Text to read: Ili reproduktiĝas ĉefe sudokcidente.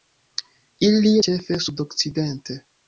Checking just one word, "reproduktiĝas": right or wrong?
wrong